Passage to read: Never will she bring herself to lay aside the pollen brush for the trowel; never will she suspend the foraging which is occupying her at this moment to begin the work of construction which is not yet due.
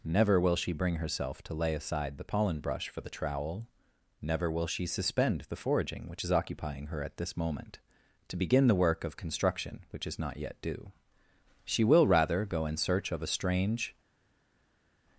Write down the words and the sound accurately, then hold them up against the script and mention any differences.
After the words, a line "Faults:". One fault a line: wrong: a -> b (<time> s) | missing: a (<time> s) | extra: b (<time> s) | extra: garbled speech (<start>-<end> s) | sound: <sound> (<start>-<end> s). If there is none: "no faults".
Never will she bring herself to lay aside the pollen brush for the trowel; never will she suspend the foraging which is occupying her at this moment to begin the work of construction which is not yet due. She will rather go in search of a strange
Faults:
extra: She will rather go in search of a strange (11.7 s)